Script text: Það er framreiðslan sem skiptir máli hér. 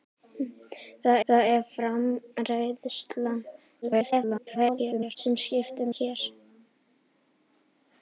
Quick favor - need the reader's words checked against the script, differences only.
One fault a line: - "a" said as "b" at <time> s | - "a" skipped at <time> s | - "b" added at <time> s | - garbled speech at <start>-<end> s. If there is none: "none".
- "það" added at 1.3 s
- garbled speech at 3.8-5.2 s
- "máli" skipped at 5.9 s